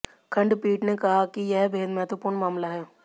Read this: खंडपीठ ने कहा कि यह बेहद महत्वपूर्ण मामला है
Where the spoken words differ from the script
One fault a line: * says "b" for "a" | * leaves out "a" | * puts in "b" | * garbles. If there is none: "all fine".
all fine